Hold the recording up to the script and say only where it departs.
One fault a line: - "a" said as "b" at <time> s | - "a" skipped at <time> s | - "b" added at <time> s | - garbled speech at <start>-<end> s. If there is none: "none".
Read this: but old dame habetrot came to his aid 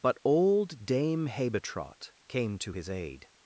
none